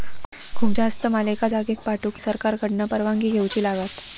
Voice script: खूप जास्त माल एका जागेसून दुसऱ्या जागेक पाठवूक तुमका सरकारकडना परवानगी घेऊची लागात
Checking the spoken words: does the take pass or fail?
fail